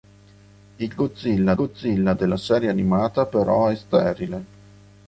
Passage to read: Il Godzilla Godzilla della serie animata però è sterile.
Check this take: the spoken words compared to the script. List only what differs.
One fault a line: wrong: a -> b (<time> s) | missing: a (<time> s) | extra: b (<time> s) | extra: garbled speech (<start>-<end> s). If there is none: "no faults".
no faults